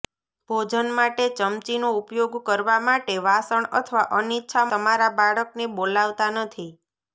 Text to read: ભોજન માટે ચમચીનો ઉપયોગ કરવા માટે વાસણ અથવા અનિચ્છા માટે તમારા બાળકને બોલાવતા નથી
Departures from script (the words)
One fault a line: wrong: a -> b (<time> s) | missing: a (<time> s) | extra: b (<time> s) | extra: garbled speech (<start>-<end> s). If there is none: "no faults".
missing: માટે (4.7 s)